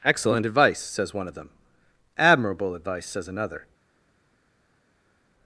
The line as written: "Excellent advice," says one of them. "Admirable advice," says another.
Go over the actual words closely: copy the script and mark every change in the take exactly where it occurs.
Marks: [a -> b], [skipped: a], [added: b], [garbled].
"Excellent advice," says one of them. "Admirable advice," says another.